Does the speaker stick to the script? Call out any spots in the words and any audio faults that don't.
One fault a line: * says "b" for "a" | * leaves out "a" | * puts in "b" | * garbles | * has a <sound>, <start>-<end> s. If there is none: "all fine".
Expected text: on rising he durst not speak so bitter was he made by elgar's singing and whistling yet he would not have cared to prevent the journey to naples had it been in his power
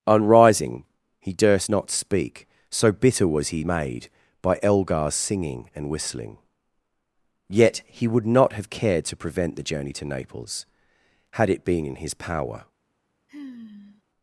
* has a sigh, 13.3-14.0 s